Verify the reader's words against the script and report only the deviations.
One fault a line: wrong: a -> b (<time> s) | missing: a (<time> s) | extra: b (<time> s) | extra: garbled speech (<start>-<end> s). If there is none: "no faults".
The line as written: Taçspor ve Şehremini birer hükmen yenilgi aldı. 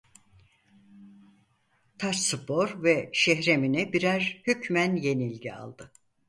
no faults